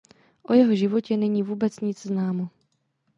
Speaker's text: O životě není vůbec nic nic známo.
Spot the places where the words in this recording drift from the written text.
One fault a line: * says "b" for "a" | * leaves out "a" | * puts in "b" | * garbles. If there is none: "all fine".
* puts in "jeho"
* leaves out "nic"